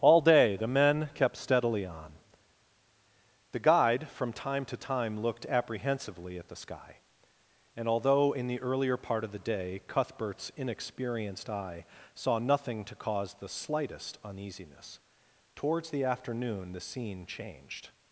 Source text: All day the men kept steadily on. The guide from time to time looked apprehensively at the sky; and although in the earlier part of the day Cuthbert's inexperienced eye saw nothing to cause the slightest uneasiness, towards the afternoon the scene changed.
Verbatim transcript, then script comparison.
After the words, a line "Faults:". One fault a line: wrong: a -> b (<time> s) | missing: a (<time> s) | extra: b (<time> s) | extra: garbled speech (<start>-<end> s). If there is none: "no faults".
All day the men kept steadily on. The guide from time to time looked apprehensively at the sky; and although in the earlier part of the day Cuthbert's inexperienced eye saw nothing to cause the slightest uneasiness, towards the afternoon the scene changed.
Faults:
no faults